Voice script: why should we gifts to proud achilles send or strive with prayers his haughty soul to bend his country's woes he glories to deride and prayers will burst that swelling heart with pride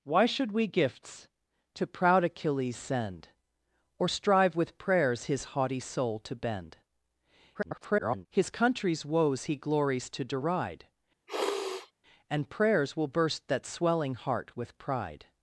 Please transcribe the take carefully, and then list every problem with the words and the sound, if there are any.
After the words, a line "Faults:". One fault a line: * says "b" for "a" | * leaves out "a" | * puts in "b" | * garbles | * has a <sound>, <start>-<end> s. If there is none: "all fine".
why should we gifts to proud achilles send or strive with prayers his haughty soul to bend [garbled] his country's woes he glories to deride and prayers will burst that swelling heart with pride
Faults:
* garbles
* has a sniff, 11.3-11.9 s